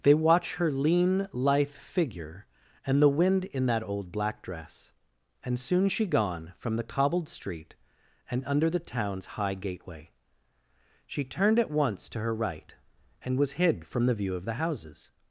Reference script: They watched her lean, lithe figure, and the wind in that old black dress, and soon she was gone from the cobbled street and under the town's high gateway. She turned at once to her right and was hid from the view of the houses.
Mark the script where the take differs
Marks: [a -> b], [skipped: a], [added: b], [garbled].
They [watched -> watch] her lean, lithe figure, and the wind in that old black dress, and soon she [skipped: was] gone from the cobbled street and under the town's high gateway. She turned at once to her right and was hid from the view of the houses.